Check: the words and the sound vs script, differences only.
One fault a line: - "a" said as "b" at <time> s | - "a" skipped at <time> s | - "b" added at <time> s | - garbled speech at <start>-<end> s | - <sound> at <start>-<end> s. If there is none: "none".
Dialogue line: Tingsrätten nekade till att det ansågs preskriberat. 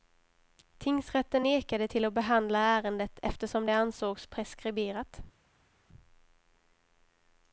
- "behandla ärendet eftersom" added at 2.1 s